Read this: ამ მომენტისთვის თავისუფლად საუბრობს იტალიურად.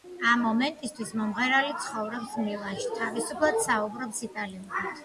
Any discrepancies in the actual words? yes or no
yes